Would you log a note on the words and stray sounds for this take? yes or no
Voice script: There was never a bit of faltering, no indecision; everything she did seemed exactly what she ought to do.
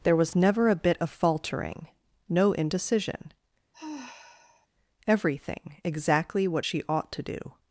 yes